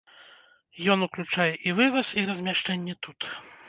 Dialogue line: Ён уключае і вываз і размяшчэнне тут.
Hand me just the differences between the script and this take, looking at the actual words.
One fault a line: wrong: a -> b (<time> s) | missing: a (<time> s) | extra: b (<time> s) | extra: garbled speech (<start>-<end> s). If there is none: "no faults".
no faults